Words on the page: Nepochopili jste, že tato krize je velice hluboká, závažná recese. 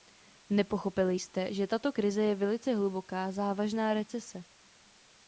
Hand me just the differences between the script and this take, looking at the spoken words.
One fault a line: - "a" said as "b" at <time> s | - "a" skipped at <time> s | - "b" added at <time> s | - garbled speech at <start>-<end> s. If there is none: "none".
none